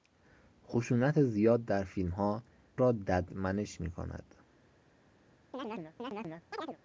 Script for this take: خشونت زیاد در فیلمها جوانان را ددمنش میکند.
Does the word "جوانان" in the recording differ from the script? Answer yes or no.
yes